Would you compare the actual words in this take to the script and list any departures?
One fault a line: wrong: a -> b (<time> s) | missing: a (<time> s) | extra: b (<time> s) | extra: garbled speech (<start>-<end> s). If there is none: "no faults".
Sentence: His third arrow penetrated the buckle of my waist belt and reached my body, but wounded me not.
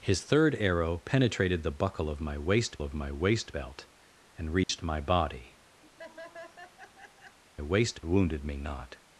extra: of my waist (2.8 s)
wrong: but -> waist (7.6 s)